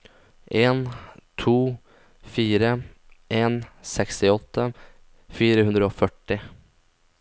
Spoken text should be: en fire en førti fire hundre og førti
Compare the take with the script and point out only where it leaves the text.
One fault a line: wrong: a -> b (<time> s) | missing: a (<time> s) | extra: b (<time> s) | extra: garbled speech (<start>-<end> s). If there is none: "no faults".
extra: to (1.4 s)
wrong: førti -> sekstiåtte (3.9 s)